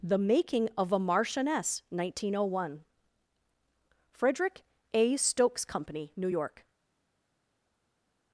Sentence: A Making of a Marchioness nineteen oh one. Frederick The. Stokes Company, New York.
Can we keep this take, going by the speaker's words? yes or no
no